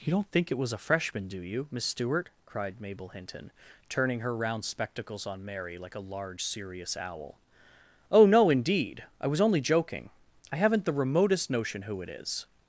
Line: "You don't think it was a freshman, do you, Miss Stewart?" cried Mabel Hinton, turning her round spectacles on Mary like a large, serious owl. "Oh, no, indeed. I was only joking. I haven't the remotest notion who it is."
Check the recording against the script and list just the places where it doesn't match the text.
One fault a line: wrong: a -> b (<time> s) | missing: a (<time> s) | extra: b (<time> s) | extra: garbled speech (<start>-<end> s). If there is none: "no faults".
no faults